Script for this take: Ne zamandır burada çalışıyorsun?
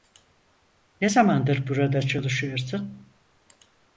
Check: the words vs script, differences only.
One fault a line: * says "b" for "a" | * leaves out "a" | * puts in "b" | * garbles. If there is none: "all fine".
all fine